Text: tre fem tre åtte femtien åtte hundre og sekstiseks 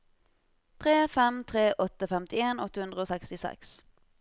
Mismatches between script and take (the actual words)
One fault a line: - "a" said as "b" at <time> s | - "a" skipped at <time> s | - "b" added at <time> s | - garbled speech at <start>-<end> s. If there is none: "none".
none